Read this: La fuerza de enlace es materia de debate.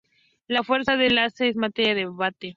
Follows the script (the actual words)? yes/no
yes